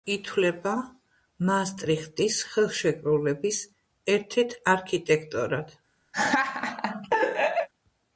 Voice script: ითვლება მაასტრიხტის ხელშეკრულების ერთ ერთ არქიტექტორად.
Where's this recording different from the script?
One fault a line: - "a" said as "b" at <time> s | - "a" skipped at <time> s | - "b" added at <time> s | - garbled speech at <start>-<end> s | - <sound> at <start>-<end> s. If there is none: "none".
- laugh at 6.1-7.7 s